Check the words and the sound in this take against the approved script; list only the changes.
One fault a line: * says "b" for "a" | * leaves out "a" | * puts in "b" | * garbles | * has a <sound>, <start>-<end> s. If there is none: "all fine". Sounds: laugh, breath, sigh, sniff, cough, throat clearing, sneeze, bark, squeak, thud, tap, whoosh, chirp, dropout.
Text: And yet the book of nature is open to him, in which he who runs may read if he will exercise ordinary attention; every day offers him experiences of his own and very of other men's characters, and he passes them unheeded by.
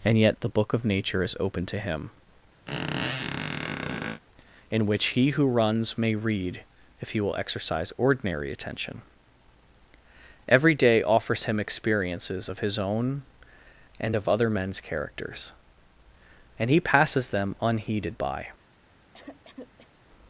* has a squeak, 2.7-4.2 s
* leaves out "very"
* has a cough, 19.1-19.9 s